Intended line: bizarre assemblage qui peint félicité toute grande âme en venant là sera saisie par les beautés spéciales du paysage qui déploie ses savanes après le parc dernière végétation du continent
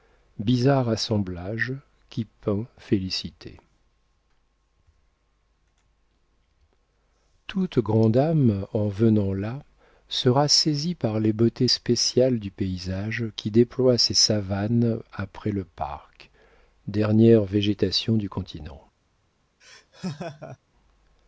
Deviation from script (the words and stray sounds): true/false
true